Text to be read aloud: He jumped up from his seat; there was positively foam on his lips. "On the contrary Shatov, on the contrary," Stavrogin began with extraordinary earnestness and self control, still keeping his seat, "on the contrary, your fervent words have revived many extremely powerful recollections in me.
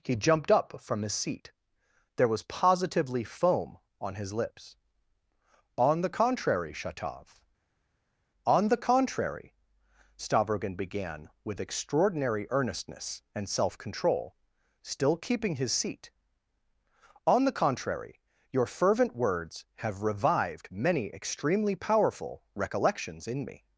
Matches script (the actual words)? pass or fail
pass